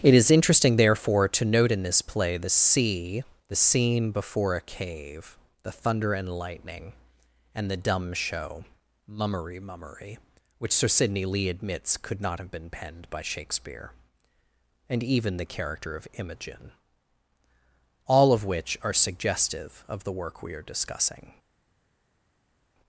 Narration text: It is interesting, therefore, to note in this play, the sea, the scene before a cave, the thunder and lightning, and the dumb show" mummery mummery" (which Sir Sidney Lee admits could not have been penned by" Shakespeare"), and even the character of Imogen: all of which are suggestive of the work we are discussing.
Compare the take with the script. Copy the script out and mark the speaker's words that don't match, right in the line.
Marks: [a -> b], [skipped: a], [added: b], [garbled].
It is interesting, therefore, to note in this play, the sea, the scene before a cave, the thunder and lightning, and the dumb show" mummery mummery" (which Sir Sidney Lee admits could not have been penned by" Shakespeare"), and even the character of Imogen: all of which are suggestive of the work we are discussing.